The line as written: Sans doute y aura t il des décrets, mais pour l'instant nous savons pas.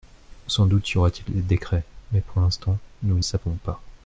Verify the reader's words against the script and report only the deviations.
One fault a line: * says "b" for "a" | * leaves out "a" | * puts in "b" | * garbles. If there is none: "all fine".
all fine